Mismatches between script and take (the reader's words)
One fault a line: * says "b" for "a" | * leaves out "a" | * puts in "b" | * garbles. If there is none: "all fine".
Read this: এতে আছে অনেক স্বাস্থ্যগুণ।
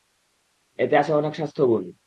all fine